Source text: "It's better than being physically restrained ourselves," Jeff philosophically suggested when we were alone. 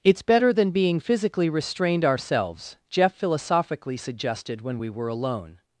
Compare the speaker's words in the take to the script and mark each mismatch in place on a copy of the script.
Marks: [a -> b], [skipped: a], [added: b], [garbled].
"It's better than being physically restrained ourselves," Jeff philosophically suggested when we were alone.